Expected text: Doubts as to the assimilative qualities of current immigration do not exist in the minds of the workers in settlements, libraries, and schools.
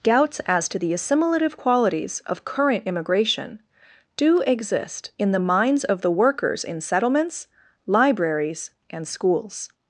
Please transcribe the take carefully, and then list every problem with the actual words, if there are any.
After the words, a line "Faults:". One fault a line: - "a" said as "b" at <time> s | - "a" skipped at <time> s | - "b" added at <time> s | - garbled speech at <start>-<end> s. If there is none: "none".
Doubts as to the assimilative qualities of current immigration do exist in the minds of the workers in settlements, libraries, and schools.
Faults:
- "not" skipped at 4.4 s